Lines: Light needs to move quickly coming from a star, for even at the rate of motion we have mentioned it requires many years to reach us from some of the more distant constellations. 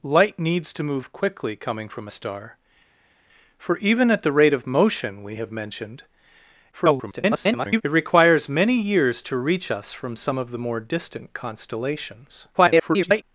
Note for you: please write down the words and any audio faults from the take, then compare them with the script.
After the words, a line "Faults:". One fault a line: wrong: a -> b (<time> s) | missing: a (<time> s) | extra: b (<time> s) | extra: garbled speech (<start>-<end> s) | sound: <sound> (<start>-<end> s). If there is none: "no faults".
Light needs to move quickly coming from a star, for even at the rate of motion we have mentioned [garbled] it requires many years to reach us from some of the more distant constellations. [garbled]
Faults:
extra: garbled speech (6.7-7.8 s)
extra: garbled speech (12.5-13.2 s)